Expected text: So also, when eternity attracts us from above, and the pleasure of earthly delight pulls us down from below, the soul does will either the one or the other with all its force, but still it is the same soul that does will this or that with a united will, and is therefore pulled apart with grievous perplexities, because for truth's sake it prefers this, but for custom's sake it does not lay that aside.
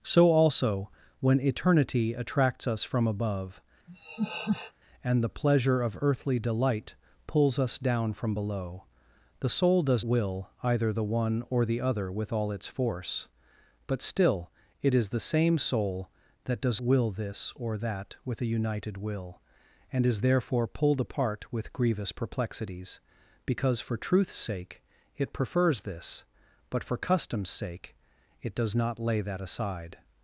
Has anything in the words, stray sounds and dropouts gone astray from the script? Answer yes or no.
yes